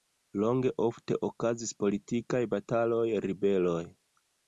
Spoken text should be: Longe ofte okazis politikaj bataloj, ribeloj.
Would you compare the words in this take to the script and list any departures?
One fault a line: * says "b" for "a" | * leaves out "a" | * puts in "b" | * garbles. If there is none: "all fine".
all fine